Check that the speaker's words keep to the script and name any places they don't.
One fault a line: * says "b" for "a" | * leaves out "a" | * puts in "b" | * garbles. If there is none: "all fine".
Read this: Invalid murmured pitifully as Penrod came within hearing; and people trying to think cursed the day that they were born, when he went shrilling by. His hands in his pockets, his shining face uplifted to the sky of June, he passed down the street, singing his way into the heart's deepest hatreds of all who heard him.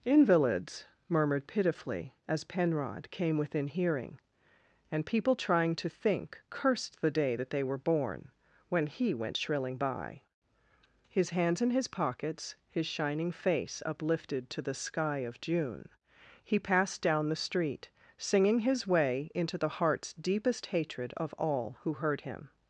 * says "Invalids" for "Invalid"
* says "hatred" for "hatreds"